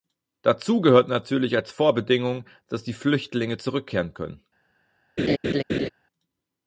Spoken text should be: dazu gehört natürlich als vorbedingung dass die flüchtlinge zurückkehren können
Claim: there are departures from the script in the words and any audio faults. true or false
true